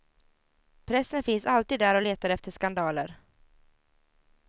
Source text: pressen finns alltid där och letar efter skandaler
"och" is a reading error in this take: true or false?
false